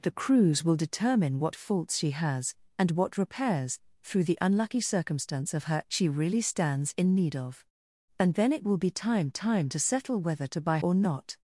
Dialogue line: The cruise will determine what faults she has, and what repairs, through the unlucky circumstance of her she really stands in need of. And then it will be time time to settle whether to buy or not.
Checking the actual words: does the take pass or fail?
pass